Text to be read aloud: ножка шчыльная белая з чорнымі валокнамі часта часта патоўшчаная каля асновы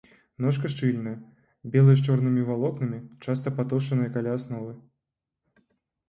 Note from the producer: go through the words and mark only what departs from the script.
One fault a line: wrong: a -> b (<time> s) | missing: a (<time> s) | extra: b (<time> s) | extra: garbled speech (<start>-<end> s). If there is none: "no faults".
missing: часта (3.5 s)